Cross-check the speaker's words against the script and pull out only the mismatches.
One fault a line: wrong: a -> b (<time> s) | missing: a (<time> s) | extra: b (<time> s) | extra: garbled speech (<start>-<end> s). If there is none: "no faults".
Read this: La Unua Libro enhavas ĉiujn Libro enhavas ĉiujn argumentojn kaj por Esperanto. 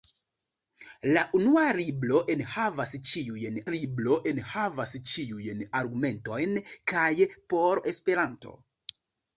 no faults